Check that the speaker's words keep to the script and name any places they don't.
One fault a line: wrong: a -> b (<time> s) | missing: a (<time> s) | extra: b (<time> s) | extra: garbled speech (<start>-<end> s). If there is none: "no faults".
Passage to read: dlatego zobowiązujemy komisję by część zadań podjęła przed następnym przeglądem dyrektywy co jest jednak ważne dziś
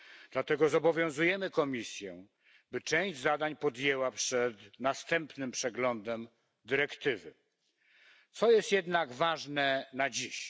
extra: na (9.9 s)